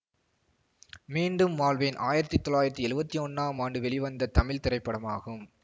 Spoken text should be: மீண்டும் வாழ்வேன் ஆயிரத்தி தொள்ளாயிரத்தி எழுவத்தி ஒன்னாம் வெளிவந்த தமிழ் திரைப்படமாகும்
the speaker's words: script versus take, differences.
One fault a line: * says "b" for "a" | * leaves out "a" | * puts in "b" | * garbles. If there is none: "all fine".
* puts in "ஆண்டு"